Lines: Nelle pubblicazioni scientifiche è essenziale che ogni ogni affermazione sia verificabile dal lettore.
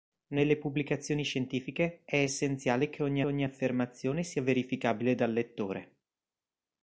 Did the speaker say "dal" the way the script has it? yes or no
yes